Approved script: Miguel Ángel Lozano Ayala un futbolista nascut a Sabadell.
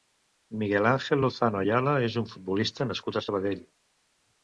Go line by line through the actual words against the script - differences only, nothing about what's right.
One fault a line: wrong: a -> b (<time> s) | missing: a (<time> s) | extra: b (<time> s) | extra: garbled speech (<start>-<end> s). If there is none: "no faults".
extra: és (2.1 s)